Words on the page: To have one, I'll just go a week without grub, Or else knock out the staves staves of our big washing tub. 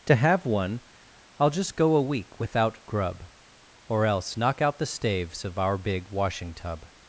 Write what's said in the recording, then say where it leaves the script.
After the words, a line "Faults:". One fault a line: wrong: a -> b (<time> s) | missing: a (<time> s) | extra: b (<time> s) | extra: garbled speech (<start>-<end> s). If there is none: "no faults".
To have one, I'll just go a week without grub, Or else knock out the staves of our big washing tub.
Faults:
missing: staves (5.4 s)